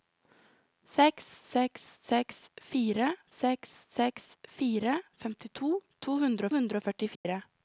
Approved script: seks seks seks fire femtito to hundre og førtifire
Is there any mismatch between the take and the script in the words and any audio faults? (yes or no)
yes